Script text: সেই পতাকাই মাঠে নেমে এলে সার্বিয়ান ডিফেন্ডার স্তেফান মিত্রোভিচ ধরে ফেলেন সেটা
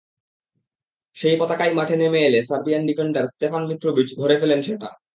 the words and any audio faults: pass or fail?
pass